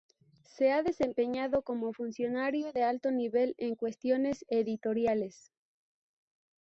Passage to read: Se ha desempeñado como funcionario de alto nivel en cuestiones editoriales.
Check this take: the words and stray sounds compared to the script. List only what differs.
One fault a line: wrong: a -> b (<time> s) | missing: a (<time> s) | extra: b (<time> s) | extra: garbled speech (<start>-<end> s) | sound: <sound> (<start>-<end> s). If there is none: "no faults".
no faults